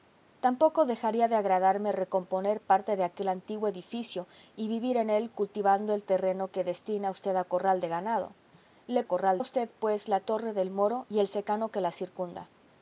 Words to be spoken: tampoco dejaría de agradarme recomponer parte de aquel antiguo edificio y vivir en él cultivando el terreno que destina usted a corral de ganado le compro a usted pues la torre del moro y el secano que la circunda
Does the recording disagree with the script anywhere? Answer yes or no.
yes